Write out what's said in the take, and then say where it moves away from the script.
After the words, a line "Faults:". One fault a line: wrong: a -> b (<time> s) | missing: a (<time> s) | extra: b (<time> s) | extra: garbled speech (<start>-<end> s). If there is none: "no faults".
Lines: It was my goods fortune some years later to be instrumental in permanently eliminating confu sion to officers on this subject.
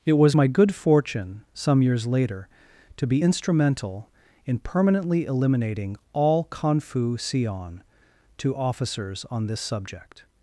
It was my good fortune some years later to be instrumental in permanently eliminating all confu sion to officers on this subject.
Faults:
wrong: goods -> good (0.5 s)
extra: all (6.1 s)